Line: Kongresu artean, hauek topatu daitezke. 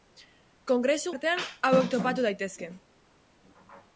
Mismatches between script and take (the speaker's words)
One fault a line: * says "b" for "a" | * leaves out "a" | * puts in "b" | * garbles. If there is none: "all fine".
all fine